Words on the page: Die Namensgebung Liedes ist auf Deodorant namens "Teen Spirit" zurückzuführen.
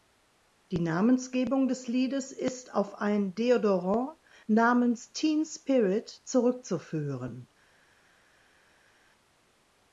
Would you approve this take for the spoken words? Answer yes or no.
no